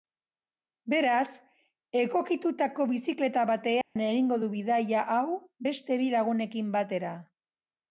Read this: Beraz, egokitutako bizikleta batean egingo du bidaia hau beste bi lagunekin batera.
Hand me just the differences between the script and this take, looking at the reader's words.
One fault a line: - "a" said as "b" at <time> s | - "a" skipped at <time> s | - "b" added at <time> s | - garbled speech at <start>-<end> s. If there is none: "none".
none